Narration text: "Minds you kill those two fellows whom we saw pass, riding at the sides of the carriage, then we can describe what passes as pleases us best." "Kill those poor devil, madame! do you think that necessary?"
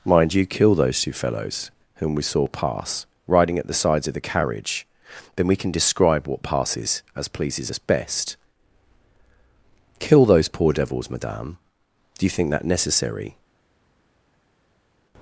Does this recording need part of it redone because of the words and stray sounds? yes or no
yes